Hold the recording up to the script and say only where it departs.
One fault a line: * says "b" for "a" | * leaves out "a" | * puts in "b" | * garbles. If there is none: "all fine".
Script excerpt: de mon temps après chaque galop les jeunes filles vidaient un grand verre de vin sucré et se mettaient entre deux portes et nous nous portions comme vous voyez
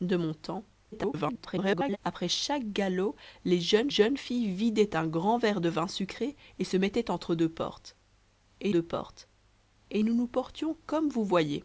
* garbles
* puts in "jeunes"
* puts in "deux portes et"